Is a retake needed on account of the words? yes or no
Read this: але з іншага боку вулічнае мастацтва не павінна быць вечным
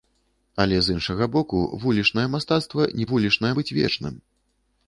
yes